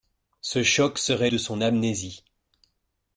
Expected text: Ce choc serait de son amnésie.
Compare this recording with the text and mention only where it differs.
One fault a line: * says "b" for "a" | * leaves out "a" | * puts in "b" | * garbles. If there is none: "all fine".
all fine